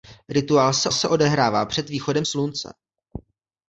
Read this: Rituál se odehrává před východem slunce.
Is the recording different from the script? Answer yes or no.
yes